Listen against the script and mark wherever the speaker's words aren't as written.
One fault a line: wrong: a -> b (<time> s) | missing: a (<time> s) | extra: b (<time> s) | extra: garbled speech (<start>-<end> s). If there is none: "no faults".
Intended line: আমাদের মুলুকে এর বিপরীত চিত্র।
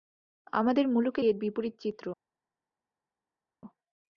no faults